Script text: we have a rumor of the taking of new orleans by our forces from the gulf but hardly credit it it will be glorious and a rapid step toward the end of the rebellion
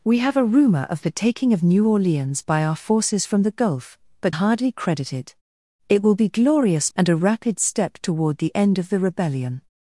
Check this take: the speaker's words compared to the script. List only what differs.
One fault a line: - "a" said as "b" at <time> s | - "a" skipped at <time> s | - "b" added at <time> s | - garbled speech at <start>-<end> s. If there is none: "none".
none